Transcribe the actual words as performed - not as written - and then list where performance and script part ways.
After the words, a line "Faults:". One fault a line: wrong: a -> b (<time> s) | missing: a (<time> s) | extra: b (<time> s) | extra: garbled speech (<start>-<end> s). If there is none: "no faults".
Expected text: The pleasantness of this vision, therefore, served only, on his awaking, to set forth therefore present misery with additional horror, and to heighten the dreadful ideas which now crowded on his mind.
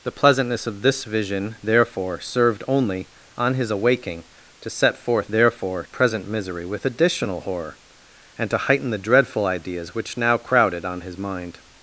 The pleasantness of this vision, therefore, served only, on his awaking, to set forth therefore present misery with additional horror, and to heighten the dreadful ideas which now crowded on his mind.
Faults:
no faults